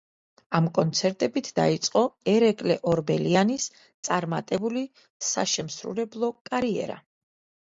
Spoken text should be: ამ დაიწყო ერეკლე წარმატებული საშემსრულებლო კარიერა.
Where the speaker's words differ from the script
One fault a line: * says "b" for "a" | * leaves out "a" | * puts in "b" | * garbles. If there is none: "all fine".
* puts in "კონცერტებით"
* puts in "ორბელიანის"